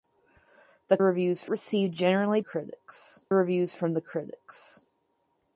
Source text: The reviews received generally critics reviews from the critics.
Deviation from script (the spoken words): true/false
false